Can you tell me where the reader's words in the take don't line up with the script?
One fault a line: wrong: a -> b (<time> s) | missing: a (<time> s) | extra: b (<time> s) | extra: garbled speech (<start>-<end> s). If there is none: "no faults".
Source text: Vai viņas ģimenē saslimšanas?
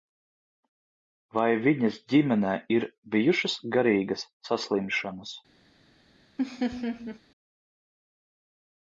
extra: ir bijušas garīgas (2.8 s)